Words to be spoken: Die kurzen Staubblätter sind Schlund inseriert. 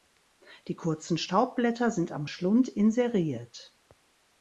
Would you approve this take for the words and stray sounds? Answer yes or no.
no